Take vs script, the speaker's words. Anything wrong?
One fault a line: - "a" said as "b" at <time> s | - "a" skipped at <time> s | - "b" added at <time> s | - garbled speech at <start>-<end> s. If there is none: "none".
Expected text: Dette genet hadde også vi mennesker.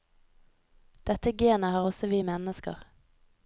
- "hadde" said as "har" at 1.7 s